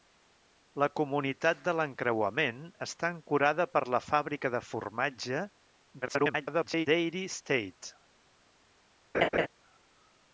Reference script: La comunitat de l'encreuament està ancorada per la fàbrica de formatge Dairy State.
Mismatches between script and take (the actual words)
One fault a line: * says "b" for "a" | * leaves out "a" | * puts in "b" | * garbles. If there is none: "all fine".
* garbles